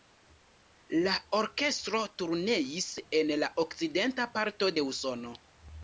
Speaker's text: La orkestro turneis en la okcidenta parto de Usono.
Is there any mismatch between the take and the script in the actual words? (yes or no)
no